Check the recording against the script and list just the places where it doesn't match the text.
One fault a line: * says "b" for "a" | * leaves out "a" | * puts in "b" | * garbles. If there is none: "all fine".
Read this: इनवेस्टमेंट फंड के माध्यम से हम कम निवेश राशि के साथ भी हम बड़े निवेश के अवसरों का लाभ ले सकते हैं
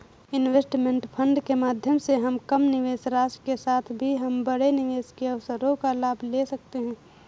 all fine